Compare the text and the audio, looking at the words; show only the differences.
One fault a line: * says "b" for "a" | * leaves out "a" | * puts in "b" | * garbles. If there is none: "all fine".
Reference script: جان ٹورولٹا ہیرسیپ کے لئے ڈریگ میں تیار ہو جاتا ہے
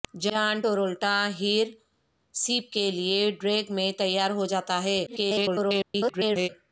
* garbles